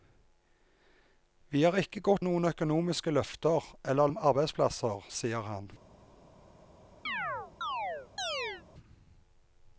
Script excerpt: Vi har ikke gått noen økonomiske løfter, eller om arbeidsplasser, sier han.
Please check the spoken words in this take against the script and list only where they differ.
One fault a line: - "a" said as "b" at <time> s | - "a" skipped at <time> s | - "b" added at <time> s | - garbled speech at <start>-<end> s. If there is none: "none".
none